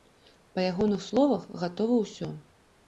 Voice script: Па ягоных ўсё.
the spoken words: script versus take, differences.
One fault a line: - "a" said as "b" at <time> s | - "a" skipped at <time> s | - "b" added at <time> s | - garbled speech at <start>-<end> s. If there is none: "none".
- "словах гатова" added at 1.1 s